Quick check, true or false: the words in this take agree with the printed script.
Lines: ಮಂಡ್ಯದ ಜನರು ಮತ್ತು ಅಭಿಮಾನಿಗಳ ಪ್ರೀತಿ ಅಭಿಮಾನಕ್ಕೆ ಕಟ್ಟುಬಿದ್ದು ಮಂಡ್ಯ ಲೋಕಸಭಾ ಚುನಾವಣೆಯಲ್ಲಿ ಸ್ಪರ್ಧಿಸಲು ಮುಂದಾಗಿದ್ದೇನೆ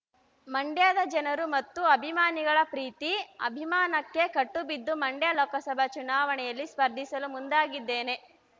true